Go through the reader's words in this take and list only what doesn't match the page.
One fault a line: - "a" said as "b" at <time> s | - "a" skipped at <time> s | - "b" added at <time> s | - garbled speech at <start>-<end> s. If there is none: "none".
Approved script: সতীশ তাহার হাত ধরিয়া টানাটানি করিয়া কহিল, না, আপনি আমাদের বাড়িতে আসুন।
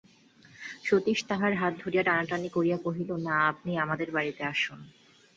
none